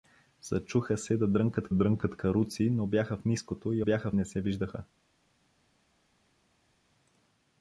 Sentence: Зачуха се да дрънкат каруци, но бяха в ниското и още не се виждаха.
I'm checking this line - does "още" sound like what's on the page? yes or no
no